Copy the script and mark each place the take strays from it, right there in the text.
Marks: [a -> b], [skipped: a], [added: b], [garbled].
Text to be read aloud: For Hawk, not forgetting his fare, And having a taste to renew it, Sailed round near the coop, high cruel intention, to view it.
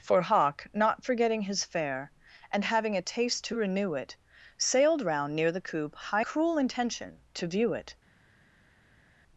For Hawk, not forgetting his fare, And having a taste to renew it, Sailed round near the coop, high cruel intention, to view it.